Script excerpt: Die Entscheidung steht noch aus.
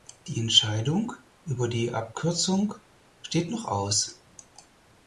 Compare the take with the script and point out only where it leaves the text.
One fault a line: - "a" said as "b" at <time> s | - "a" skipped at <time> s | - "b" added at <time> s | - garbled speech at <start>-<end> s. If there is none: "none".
- "über die Abkürzung" added at 1.4 s